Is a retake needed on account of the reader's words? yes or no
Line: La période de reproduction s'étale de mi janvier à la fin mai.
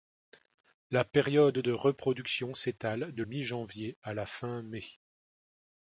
no